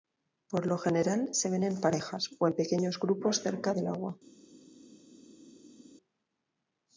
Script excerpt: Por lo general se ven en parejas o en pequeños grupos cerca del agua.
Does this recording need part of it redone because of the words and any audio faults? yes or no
no